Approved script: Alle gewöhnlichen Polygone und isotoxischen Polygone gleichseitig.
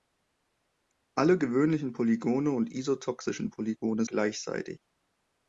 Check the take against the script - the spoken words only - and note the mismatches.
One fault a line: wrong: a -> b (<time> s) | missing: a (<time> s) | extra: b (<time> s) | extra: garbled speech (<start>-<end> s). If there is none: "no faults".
no faults